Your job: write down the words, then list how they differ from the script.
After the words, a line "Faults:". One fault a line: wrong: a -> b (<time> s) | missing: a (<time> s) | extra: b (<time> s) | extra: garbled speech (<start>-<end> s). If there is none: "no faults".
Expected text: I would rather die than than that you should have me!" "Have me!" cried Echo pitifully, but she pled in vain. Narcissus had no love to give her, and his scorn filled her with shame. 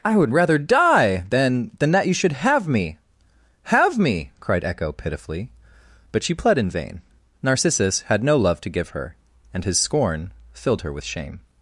I would rather die than than that you should have me!" "Have me!" cried Echo pitifully, but she pled in vain. Narcissus had no love to give her, and his scorn filled her with shame.
Faults:
no faults